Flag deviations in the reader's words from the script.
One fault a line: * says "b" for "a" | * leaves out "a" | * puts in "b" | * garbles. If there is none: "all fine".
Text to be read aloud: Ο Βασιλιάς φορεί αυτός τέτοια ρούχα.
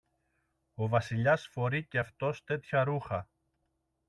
* puts in "και"